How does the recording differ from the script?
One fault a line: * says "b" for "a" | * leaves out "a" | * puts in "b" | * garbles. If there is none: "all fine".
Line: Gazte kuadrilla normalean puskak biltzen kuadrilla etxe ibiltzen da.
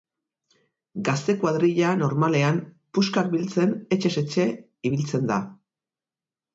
* says "etxez" for "kuadrilla"